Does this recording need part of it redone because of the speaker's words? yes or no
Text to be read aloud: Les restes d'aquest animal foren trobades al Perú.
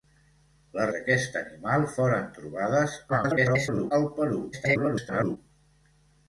yes